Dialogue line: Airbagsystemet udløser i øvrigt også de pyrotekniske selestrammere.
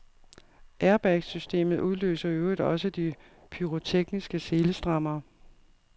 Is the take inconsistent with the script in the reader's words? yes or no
no